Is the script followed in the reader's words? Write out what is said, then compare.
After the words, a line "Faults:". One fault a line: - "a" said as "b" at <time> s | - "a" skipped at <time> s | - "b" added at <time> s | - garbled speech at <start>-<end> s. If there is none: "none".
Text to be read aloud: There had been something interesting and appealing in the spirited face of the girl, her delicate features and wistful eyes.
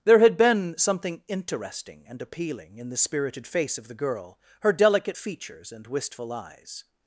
There had been something interesting and appealing in the spirited face of the girl, her delicate features and wistful eyes.
Faults:
none